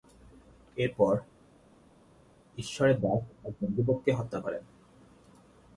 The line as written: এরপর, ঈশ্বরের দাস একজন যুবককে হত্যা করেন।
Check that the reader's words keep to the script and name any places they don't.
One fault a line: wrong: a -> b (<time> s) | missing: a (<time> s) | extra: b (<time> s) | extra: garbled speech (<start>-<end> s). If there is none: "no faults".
no faults